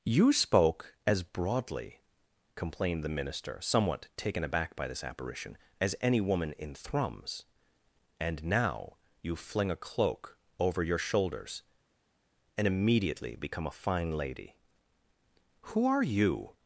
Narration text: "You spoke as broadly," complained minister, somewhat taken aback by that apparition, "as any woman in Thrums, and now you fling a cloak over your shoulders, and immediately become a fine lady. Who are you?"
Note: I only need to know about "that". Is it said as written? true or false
false